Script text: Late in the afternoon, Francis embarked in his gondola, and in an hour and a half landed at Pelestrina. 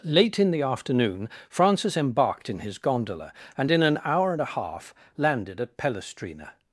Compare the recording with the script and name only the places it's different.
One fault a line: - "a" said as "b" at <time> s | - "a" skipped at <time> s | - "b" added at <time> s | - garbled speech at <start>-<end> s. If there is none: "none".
none